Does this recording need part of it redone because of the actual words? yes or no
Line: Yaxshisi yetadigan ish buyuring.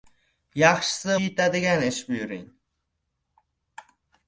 no